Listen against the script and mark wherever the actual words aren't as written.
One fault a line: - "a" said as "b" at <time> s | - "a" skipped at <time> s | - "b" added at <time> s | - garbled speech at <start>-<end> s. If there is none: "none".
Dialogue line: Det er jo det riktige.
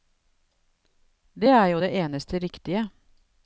- "eneste" added at 2.0 s